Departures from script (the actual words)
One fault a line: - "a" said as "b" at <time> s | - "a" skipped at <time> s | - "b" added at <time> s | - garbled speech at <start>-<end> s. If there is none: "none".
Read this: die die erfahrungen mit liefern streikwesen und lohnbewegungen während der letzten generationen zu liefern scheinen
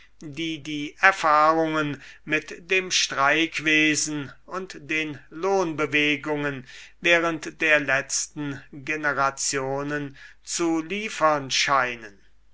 - "liefern" said as "dem" at 2.7 s
- "den" added at 4.8 s